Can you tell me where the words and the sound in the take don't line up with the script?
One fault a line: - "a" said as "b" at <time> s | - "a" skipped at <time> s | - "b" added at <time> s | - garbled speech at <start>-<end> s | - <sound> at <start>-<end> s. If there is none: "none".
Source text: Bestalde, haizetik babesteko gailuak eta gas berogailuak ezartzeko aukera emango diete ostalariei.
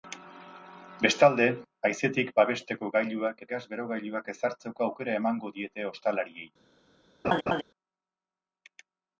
- "eta" skipped at 3.4 s
- laugh at 7.2-7.6 s